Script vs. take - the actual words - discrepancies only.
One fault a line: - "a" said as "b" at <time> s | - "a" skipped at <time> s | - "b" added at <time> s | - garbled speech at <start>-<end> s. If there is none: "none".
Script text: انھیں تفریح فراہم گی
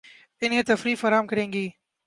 - "کریں" added at 1.3 s